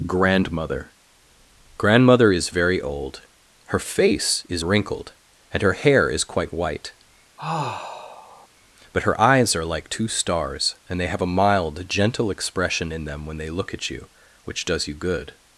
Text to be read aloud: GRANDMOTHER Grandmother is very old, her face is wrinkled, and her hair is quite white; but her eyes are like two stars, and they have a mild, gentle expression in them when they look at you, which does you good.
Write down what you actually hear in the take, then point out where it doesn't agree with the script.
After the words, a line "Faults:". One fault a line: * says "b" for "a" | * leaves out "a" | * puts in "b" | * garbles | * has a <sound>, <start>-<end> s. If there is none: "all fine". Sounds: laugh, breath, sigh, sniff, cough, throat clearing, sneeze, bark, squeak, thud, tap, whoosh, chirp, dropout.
GRANDMOTHER Grandmother is very old, her face is wrinkled, and her hair is quite white; but her eyes are like two stars, and they have a mild, gentle expression in them when they look at you, which does you good.
Faults:
* has a sigh, 7.4-8.5 s